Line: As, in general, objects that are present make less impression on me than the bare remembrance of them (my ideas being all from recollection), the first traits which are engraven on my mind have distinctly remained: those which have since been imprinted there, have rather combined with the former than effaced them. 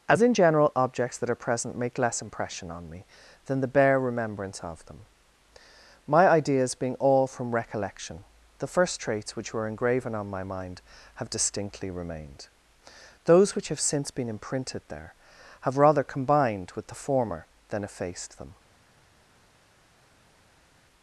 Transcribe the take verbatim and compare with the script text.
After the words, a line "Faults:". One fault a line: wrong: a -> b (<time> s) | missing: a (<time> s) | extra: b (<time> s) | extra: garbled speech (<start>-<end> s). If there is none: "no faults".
As, in general, objects that are present make less impression on me than the bare remembrance of them (my ideas being all from recollection), the first traits which were engraven on my mind have distinctly remained: those which have since been imprinted there, have rather combined with the former than effaced them.
Faults:
wrong: are -> were (9.5 s)